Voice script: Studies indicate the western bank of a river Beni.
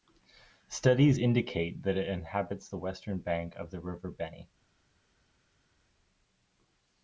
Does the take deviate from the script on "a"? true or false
true